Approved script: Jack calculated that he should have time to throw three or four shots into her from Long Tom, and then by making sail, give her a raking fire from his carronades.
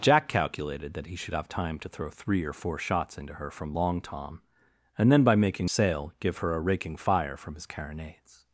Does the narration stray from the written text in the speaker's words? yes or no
no